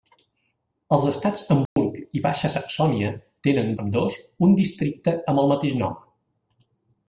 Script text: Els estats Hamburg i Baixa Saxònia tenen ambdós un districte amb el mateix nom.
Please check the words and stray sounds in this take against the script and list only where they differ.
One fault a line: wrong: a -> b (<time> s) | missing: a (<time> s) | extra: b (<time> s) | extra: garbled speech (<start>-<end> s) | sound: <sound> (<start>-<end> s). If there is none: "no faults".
sound: dropout (1.7-1.8 s)